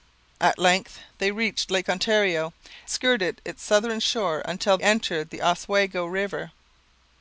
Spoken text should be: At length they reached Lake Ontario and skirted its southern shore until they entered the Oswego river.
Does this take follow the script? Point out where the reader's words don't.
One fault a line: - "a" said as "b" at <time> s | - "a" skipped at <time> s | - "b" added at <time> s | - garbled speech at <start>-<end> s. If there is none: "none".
- "and" skipped at 2.5 s
- "they" skipped at 4.8 s